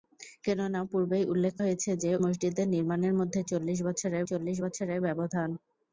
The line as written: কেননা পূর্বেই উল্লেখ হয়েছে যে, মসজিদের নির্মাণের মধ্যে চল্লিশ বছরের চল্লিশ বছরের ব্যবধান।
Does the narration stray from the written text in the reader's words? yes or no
no